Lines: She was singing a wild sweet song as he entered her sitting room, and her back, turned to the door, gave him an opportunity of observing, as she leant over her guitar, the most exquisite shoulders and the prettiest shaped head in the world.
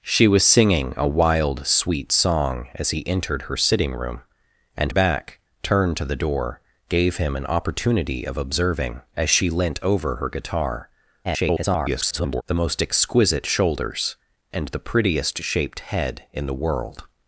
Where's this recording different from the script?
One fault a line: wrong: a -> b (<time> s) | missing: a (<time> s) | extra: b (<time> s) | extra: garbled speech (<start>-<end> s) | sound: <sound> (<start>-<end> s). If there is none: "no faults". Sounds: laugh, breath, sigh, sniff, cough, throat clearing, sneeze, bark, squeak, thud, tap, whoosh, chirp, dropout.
missing: her (4.9 s)
extra: garbled speech (11.2-12.4 s)